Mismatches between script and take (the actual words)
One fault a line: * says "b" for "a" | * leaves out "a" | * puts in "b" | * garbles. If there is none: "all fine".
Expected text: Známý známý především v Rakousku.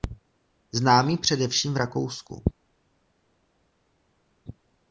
* leaves out "známý"